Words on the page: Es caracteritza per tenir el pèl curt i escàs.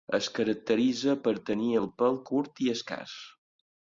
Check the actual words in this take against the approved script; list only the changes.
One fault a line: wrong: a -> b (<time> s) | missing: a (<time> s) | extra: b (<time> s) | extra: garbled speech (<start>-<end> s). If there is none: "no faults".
no faults